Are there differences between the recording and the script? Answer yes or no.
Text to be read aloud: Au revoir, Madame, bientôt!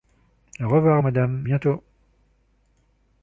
no